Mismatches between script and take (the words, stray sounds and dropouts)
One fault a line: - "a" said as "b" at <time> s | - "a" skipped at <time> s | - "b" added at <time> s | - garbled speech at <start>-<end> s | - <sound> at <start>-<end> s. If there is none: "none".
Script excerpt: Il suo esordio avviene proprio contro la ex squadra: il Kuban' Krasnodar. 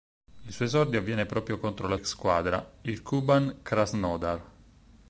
none